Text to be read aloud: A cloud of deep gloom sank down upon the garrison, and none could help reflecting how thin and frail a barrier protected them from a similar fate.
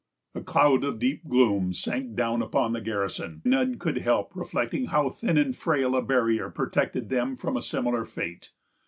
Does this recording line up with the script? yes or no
no